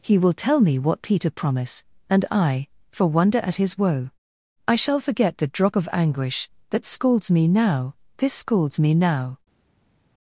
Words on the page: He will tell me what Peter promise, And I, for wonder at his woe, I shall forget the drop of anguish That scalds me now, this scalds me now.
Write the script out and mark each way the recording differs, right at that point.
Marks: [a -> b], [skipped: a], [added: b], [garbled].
He will tell me what Peter promise, And I, for wonder at his woe, I shall forget the drop of anguish That scalds me now, this scalds me now.